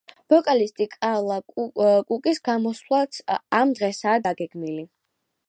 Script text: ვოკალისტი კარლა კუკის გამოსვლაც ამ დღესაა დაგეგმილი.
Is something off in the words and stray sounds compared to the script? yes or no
no